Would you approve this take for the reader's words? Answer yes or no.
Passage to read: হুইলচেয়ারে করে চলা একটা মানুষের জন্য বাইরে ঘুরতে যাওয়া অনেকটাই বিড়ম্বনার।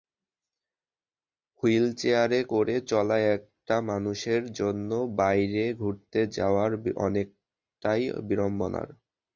yes